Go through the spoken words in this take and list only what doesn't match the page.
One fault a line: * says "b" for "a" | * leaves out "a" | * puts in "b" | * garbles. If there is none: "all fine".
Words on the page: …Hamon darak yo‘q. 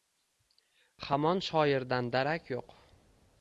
* puts in "shoirdan"